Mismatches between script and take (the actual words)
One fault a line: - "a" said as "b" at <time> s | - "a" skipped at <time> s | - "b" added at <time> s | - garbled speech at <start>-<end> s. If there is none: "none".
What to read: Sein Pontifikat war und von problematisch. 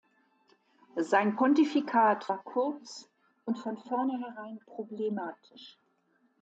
- "kurz" added at 2.4 s
- "vornherein" added at 3.8 s